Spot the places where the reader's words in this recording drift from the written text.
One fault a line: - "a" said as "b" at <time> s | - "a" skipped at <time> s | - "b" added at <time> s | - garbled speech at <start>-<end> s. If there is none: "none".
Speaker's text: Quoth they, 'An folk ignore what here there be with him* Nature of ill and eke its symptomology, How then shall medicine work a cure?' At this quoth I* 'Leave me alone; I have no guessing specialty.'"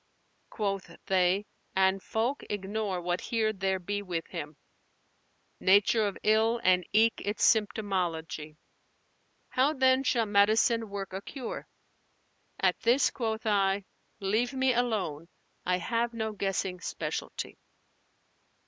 none